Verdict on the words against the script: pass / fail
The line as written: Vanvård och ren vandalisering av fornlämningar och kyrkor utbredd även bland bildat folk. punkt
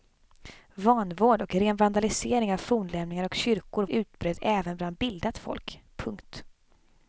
pass